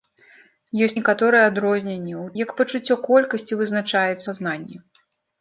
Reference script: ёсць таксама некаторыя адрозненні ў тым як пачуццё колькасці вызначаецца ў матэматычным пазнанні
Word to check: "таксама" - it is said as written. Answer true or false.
false